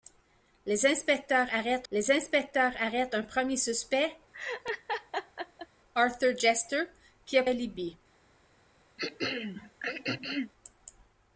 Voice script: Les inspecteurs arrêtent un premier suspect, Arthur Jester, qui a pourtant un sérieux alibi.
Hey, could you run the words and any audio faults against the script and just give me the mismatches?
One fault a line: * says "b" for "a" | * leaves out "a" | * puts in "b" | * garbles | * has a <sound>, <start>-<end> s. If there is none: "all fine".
* puts in "les inspecteurs arrêtent"
* has a laugh, 4.3-5.7 s
* leaves out "pourtant un sérieux"
* has a throat clearing, 9.0-10.5 s